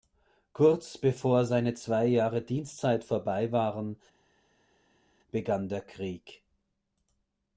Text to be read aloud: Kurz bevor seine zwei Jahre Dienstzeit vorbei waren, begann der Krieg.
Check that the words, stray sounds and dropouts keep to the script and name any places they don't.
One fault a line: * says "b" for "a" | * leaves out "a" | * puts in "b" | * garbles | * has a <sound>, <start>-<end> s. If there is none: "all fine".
all fine